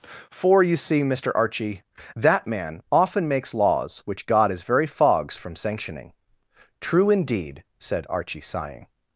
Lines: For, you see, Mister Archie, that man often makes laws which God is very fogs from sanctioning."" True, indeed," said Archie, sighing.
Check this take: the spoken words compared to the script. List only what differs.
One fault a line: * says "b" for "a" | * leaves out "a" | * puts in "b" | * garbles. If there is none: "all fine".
all fine